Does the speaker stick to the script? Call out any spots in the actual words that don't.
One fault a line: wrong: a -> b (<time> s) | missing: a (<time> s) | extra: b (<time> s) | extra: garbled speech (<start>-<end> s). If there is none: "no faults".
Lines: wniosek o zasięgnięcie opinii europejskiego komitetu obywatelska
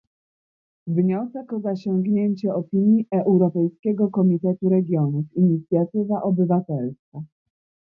extra: regionów inicjatywa (4.7 s)